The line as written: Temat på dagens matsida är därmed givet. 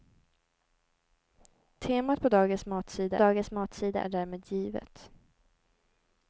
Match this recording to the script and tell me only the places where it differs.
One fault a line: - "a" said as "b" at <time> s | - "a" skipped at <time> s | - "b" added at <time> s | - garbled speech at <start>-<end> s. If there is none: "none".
- "dagens matsida" added at 3.2 s